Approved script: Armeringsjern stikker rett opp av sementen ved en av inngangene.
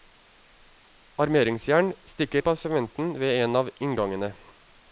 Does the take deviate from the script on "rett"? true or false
true